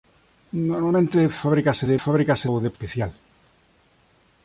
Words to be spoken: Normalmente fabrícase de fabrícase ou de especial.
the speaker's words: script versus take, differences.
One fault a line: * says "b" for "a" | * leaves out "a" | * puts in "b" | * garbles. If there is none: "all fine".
all fine